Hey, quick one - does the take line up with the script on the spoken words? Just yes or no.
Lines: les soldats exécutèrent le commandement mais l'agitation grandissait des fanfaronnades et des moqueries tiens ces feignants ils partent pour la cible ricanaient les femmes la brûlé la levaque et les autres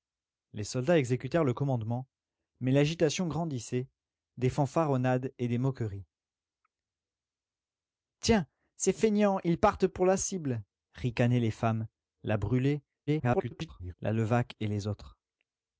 no